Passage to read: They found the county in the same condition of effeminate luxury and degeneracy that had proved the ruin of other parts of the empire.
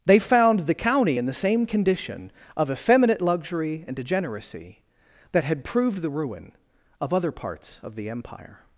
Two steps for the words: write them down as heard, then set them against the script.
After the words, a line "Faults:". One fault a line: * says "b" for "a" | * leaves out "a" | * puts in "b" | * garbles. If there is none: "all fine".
They found the county in the same condition of effeminate luxury and degeneracy that had proved the ruin of other parts of the empire.
Faults:
all fine